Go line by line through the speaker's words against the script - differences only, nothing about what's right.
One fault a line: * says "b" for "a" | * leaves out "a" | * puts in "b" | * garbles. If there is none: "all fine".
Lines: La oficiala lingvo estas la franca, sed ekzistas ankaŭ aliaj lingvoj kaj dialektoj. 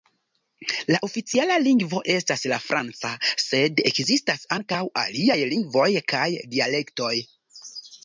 all fine